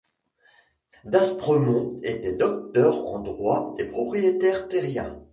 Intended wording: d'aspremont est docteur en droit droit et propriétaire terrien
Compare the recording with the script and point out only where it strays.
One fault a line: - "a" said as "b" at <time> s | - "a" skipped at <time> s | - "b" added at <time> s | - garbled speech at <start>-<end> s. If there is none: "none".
- "est" said as "était" at 2.0 s
- "droit" skipped at 3.7 s